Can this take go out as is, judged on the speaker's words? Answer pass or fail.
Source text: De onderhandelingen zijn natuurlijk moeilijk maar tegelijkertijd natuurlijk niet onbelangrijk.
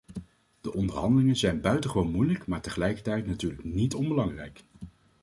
fail